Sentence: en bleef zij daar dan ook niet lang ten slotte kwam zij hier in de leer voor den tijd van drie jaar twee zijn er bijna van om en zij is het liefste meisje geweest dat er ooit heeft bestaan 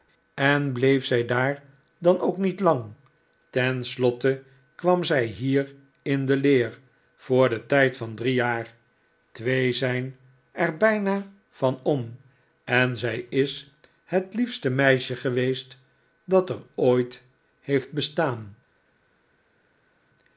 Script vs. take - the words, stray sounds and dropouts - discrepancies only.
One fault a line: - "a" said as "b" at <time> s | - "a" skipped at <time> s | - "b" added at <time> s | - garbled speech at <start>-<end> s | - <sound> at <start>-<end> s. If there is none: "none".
none